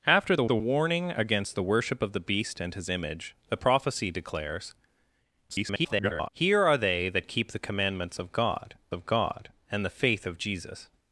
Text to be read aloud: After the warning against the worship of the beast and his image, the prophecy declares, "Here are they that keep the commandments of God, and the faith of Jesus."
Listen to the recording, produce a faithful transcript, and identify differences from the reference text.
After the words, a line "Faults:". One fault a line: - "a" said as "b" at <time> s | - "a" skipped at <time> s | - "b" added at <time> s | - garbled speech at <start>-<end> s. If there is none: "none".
After the the warning against the worship of the beast and his image, the prophecy declares, [garbled] "Here are they that keep the commandments of God of God, and the faith of Jesus."
Faults:
- "the" added at 0.4 s
- garbled speech at 5.5-6.3 s
- "of God" added at 8.9 s